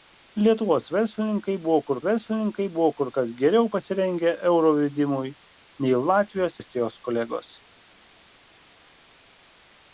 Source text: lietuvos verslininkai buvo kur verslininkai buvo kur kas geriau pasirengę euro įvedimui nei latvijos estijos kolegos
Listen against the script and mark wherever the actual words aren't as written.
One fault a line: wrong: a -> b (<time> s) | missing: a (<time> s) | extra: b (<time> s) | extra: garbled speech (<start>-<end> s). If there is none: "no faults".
no faults